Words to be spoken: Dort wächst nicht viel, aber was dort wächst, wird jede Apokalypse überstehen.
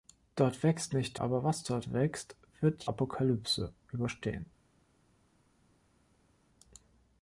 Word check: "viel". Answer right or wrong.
wrong